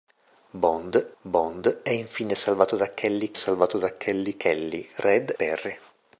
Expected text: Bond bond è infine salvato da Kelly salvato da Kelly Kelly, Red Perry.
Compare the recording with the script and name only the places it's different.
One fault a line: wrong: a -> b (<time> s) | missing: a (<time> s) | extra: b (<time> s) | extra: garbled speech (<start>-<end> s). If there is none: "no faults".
no faults